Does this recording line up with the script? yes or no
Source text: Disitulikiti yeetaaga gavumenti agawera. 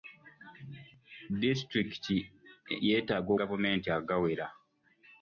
yes